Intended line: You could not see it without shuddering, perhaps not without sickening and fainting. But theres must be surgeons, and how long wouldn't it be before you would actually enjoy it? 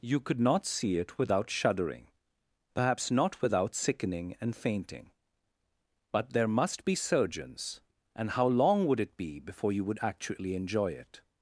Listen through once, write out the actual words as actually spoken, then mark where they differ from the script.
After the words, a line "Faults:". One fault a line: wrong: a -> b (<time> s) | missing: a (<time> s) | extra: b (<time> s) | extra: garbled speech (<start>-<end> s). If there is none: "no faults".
You could not see it without shuddering, perhaps not without sickening and fainting. But there must be surgeons, and how long would it be before you would actually enjoy it?
Faults:
wrong: theres -> there (6.3 s)
wrong: wouldn't -> would (8.9 s)